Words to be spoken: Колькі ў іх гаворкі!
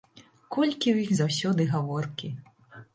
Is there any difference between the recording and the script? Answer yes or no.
yes